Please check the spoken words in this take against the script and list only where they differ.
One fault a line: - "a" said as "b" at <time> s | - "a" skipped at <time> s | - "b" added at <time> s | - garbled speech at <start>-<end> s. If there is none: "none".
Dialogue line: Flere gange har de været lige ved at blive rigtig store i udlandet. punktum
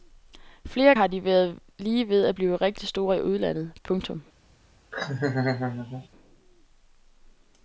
- "gange" skipped at 0.9 s